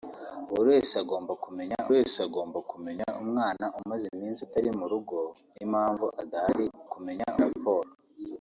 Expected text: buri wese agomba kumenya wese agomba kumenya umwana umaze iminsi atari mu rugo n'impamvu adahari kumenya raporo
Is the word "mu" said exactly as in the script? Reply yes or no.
yes